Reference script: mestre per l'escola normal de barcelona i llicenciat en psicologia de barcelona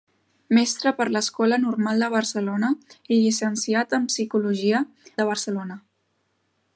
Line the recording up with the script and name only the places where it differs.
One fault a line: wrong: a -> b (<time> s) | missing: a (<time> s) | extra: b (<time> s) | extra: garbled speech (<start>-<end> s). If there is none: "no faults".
no faults